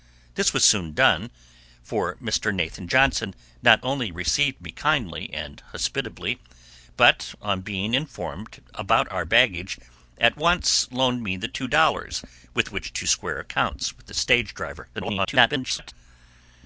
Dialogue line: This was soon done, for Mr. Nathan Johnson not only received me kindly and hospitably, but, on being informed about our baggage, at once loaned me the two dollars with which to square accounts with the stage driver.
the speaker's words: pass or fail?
fail